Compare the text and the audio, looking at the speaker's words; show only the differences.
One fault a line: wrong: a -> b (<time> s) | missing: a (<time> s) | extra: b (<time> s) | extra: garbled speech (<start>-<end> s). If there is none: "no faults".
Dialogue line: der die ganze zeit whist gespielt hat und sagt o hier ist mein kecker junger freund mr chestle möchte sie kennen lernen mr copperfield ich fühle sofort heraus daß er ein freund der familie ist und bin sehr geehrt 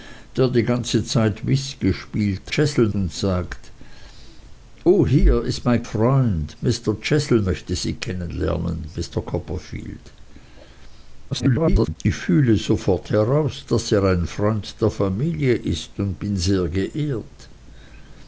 wrong: hat -> chestle (2.5 s)
missing: kecker junger (5.8 s)
extra: garbled speech (11.3-12.0 s)